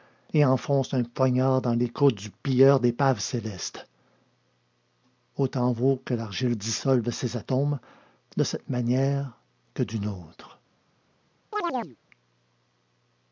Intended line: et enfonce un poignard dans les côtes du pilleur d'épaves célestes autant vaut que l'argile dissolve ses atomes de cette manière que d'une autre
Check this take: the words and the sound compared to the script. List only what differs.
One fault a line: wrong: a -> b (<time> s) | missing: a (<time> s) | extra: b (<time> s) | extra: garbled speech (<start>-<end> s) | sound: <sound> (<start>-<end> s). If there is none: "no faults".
sound: chirp (11.5-12.0 s)